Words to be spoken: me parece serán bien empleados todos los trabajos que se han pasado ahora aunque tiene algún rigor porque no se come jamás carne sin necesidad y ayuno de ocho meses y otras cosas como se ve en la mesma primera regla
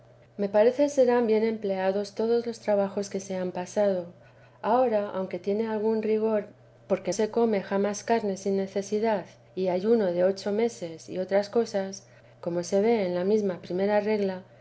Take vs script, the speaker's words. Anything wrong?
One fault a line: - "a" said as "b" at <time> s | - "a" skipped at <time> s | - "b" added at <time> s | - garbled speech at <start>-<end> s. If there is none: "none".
- "no" skipped at 7.1 s